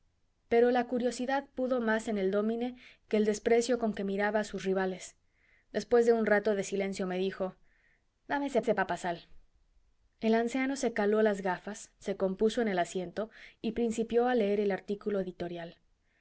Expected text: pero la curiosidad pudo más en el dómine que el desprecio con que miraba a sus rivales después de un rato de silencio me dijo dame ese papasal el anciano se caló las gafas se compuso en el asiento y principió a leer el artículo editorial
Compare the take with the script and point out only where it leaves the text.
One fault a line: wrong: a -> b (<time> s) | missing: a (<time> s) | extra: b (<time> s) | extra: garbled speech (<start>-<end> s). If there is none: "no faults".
extra: ese (8.6 s)